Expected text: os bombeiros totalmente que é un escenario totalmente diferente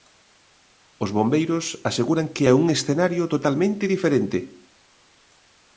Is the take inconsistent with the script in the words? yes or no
yes